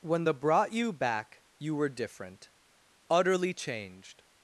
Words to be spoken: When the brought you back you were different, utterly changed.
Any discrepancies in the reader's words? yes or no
no